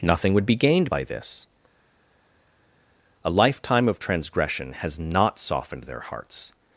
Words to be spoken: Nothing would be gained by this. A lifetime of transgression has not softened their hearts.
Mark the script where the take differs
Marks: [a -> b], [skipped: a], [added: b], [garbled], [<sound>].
Nothing would be gained by this. A lifetime of transgression has not softened their hearts.